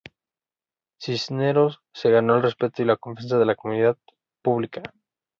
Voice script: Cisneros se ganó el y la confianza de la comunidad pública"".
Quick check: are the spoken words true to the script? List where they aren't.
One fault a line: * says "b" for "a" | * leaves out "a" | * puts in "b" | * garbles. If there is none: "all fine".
* puts in "respeto"